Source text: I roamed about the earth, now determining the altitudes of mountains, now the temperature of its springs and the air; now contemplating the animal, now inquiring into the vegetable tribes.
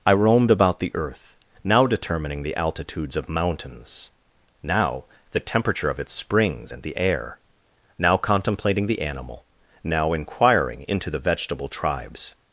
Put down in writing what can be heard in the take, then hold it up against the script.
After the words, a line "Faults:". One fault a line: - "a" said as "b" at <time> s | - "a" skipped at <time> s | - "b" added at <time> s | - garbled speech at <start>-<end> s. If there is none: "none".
I roamed about the earth, now determining the altitudes of mountains, now the temperature of its springs and the air; now contemplating the animal, now inquiring into the vegetable tribes.
Faults:
none